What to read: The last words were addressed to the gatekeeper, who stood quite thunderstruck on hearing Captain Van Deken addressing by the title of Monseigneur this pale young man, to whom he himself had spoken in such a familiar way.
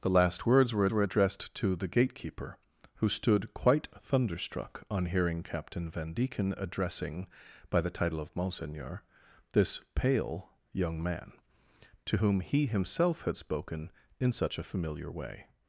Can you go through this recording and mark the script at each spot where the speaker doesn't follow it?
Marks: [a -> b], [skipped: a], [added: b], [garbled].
The last words were [added: were] addressed to the gatekeeper, who stood quite thunderstruck on hearing Captain Van Deken addressing by the title of Monseigneur this pale young man, to whom he himself had spoken in such a familiar way.